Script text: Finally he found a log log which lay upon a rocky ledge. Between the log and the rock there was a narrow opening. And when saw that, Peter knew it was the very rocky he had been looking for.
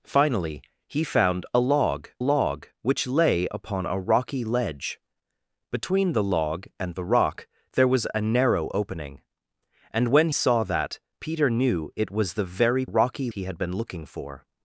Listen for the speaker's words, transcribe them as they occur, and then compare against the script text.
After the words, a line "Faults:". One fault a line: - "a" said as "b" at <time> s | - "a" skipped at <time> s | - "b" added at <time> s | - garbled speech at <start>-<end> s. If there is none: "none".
Finally he found a log log which lay upon a rocky ledge. Between the log and the rock there was a narrow opening. And when saw that, Peter knew it was the very rocky he had been looking for.
Faults:
none